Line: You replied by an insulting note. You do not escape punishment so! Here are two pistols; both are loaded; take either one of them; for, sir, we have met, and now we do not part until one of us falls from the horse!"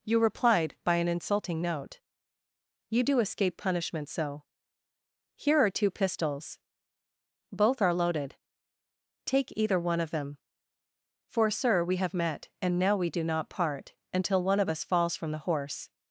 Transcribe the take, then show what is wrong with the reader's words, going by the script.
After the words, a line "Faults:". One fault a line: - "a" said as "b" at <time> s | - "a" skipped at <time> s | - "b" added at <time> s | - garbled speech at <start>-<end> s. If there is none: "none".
You replied by an insulting note. You do escape punishment so! Here are two pistols; both are loaded; take either one of them; for, sir, we have met, and now we do not part until one of us falls from the horse!"
Faults:
- "not" skipped at 3.2 s